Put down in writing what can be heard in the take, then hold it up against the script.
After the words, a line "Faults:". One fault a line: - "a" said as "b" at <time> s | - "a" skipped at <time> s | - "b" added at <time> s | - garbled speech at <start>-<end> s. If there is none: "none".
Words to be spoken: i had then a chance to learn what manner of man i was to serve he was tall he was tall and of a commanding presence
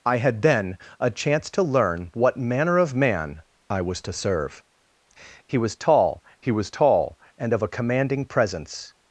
i had then a chance to learn what manner of man i was to serve he was tall he was tall and of a commanding presence
Faults:
none